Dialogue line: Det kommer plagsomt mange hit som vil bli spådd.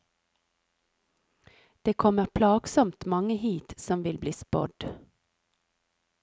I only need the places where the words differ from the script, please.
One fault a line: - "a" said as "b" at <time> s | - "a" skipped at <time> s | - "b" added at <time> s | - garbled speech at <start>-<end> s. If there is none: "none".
none